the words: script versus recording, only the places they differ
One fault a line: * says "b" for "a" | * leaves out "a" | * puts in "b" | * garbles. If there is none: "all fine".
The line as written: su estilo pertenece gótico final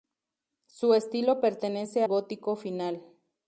all fine